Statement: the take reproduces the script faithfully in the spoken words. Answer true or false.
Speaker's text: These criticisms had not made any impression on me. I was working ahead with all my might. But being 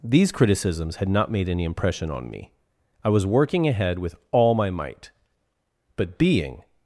true